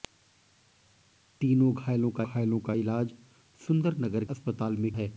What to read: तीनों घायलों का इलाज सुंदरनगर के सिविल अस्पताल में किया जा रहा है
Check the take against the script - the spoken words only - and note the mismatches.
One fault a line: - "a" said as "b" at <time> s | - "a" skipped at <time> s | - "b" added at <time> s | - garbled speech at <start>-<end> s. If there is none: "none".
- "घायलों का" added at 2.2 s
- "के सिविल" skipped at 4.2 s
- "किया जा रहा" skipped at 4.9 s